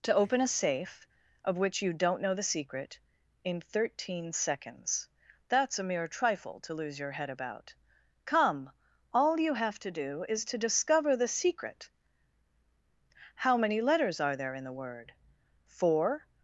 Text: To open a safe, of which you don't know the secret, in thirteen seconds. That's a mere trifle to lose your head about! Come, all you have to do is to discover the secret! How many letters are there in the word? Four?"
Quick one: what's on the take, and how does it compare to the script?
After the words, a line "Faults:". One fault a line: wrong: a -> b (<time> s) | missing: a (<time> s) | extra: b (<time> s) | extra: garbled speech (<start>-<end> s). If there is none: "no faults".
To open a safe, of which you don't know the secret, in thirteen seconds. That's a mere trifle to lose your head about! Come, all you have to do is to discover the secret! How many letters are there in the word? Four?"
Faults:
no faults